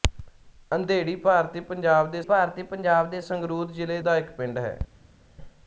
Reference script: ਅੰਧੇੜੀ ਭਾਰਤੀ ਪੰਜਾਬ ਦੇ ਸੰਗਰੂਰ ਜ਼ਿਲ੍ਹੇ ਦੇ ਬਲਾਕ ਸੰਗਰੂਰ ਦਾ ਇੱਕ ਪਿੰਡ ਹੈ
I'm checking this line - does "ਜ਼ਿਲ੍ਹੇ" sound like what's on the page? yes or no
no